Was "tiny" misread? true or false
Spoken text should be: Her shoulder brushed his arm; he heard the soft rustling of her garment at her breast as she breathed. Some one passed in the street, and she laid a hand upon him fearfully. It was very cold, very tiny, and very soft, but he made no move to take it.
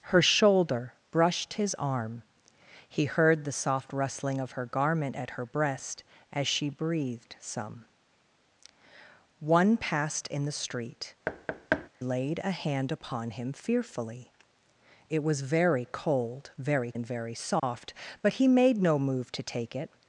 true